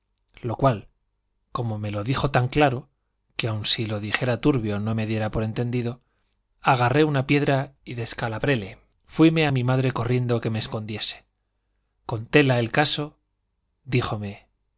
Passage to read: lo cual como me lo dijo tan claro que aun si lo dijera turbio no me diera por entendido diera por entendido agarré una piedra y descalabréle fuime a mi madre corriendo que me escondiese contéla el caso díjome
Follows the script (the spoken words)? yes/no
no